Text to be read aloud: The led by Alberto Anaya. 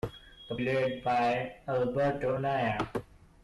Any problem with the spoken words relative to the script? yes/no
no